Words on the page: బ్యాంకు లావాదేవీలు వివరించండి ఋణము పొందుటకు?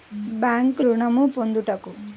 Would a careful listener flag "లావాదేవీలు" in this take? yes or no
yes